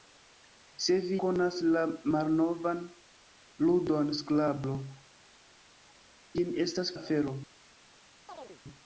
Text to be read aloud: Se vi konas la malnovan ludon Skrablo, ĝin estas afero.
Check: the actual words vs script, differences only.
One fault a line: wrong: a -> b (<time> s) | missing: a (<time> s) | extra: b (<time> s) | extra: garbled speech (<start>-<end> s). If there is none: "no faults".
no faults